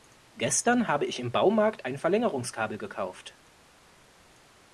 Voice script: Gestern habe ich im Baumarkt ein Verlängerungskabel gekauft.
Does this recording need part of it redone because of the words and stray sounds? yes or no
no